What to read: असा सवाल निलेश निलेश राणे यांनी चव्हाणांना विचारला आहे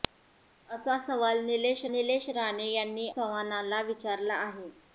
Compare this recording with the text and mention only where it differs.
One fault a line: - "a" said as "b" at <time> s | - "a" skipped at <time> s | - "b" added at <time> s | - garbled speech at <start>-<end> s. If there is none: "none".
none